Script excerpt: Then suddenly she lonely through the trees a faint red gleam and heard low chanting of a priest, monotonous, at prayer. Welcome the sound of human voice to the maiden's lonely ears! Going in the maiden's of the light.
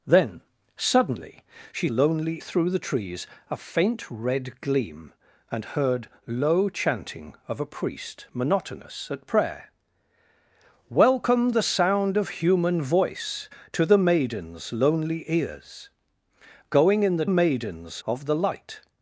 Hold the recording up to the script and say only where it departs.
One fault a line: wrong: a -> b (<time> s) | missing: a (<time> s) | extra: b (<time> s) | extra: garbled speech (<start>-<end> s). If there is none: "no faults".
no faults